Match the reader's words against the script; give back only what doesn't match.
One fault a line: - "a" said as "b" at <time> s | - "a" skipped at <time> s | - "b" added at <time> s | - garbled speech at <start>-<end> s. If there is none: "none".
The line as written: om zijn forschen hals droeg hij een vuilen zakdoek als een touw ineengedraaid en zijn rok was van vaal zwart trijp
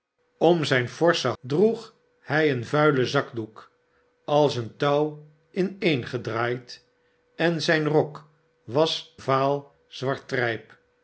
- "hals" skipped at 1.3 s
- "van" skipped at 9.2 s